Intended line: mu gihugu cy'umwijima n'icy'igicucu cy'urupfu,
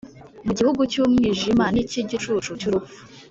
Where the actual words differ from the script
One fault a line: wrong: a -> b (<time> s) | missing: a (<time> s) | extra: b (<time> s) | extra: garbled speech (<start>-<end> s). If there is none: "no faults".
no faults